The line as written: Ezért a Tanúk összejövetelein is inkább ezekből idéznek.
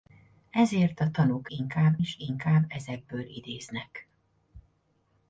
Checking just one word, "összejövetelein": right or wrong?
wrong